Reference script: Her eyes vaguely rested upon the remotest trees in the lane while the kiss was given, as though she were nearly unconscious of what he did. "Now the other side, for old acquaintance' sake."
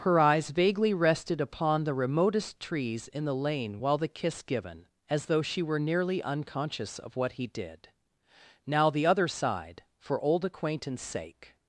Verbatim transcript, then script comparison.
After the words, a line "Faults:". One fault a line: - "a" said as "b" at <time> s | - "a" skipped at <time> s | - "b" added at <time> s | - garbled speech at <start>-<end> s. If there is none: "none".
Her eyes vaguely rested upon the remotest trees in the lane while the kiss given, as though she were nearly unconscious of what he did. "Now the other side, for old acquaintance' sake."
Faults:
- "was" skipped at 4.4 s